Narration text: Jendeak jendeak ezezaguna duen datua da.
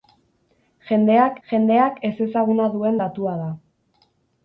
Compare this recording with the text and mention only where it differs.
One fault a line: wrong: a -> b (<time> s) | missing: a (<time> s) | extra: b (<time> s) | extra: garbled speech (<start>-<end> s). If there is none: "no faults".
no faults